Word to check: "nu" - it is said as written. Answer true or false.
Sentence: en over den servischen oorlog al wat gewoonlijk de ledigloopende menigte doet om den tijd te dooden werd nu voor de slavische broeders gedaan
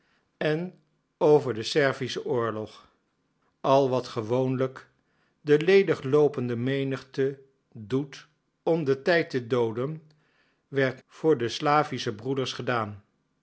false